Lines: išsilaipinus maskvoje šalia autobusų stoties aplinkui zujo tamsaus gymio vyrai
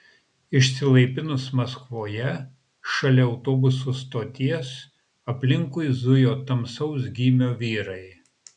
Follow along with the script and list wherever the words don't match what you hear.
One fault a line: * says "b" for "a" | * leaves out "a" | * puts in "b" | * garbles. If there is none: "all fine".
all fine